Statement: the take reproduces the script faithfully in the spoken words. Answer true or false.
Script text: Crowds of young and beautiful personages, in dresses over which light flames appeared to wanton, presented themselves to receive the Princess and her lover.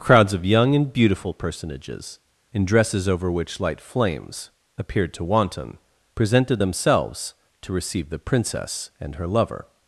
true